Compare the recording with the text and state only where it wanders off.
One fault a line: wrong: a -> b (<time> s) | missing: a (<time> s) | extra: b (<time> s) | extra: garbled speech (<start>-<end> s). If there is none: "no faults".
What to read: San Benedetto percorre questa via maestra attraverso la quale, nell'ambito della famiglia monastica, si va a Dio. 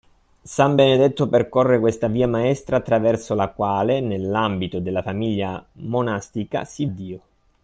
missing: va a (6.9 s)